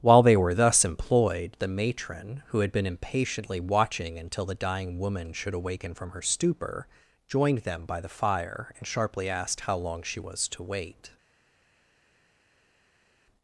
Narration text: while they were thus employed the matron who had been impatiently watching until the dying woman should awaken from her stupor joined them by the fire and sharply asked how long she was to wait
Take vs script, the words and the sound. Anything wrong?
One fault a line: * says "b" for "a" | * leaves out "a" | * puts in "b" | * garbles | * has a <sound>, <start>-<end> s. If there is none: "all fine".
all fine